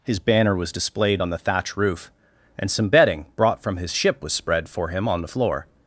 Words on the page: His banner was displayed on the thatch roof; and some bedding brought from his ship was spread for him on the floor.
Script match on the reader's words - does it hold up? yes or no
yes